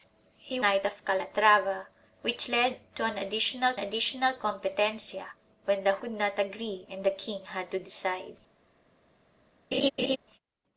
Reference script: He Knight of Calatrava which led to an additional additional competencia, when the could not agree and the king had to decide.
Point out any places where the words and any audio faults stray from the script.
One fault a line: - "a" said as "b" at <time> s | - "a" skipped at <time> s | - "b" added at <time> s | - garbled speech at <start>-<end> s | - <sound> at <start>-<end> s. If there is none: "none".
- laugh at 9.7-10.2 s